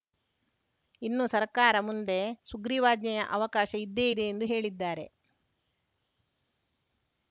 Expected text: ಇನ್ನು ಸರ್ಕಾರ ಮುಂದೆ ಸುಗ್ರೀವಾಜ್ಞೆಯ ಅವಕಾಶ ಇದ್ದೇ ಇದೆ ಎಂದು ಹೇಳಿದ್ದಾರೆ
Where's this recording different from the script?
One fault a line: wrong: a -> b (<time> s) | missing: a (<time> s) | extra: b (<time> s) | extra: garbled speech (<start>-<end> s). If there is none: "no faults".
no faults